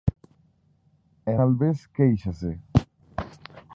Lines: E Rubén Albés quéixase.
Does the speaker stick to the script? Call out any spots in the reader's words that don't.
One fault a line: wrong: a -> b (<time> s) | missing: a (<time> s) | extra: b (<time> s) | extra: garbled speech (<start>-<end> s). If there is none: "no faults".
missing: Rubén (1.3 s)